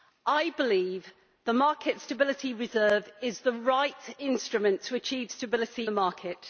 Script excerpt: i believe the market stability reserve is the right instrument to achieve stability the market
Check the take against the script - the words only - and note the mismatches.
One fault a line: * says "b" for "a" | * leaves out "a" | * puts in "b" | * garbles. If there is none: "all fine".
all fine